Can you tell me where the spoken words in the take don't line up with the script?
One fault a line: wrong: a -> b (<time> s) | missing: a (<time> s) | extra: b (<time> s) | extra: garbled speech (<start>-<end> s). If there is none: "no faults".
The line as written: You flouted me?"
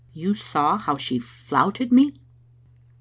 extra: saw how she (0.3 s)